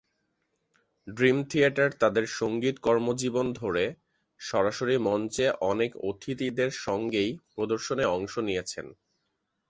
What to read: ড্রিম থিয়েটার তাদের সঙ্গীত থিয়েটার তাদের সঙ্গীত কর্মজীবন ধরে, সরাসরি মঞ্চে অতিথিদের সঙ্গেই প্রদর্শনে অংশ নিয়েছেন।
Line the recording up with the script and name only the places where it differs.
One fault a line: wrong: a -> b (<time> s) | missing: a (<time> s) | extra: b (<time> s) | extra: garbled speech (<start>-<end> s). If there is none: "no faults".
missing: থিয়েটার তাদের সঙ্গীত (2.8 s)
extra: অনেক (5.6 s)